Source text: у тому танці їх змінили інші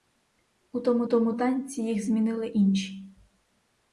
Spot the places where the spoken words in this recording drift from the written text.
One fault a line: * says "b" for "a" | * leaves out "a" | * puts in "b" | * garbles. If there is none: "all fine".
* puts in "тому"